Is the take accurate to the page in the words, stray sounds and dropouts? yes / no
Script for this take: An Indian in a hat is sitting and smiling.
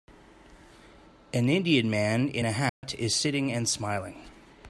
no